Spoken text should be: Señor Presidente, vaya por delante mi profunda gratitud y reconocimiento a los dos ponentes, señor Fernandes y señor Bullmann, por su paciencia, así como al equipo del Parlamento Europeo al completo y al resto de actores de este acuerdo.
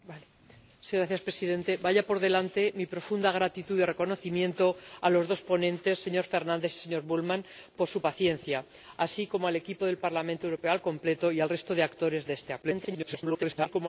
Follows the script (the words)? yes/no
no